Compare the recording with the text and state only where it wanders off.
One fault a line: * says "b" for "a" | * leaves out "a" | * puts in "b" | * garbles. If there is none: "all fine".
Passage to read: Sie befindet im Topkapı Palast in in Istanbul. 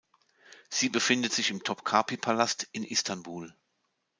* puts in "sich"
* leaves out "in"